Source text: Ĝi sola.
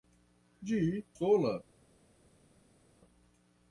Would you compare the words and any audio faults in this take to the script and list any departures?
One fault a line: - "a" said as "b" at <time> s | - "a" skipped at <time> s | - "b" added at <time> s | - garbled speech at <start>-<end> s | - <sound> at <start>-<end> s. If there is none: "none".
none